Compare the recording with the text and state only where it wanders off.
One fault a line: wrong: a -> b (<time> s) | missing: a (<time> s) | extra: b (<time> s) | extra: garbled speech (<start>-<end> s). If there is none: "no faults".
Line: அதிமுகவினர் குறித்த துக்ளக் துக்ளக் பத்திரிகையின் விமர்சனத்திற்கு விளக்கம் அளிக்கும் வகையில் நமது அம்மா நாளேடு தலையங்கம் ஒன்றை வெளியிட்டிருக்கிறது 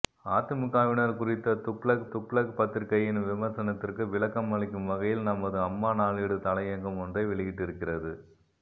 no faults